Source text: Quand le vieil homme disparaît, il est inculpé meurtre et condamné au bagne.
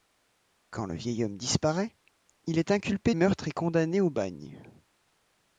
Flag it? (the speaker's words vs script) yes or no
no